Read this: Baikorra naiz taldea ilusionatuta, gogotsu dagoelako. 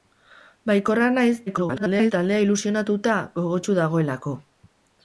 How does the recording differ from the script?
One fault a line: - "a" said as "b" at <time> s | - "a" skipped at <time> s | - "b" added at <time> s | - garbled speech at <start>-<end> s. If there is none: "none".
- garbled speech at 1.5-2.1 s